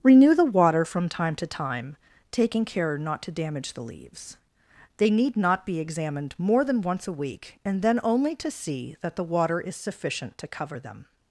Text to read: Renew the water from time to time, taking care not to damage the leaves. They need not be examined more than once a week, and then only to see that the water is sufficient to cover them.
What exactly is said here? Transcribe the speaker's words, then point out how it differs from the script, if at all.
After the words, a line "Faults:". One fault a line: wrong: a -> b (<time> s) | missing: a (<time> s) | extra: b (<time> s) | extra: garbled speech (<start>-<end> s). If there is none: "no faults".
Renew the water from time to time, taking care not to damage the leaves. They need not be examined more than once a week, and then only to see that the water is sufficient to cover them.
Faults:
no faults